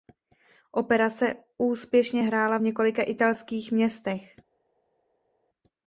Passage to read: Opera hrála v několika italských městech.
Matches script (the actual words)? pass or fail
fail